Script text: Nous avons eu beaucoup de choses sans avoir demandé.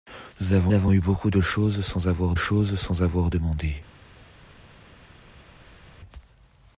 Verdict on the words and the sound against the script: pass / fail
fail